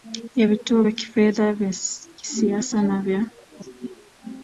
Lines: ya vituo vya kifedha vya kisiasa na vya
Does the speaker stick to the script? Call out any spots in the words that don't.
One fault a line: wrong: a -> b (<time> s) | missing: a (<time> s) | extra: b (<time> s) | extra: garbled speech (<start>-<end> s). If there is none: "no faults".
no faults